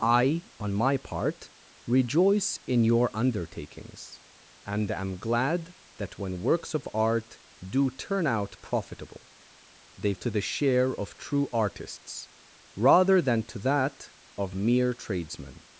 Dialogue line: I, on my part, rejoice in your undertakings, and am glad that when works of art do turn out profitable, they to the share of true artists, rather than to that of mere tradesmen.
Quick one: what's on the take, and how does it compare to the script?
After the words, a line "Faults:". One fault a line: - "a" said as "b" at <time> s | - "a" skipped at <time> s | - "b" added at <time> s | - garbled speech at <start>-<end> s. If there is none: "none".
I, on my part, rejoice in your undertakings, and am glad that when works of art do turn out profitable, they to the share of true artists, rather than to that of mere tradesmen.
Faults:
none